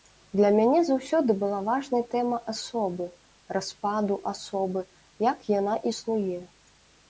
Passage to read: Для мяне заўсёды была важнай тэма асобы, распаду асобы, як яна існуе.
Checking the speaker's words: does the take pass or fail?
pass